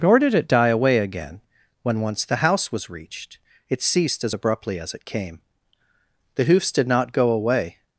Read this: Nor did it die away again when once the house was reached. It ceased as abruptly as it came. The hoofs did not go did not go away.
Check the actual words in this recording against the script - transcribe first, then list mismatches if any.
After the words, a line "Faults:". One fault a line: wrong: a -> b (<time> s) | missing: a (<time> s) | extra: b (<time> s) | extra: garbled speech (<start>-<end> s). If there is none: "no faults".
Nor did it die away again when once the house was reached. It ceased as abruptly as it came. The hoofs did not go away.
Faults:
missing: did not go (7.3 s)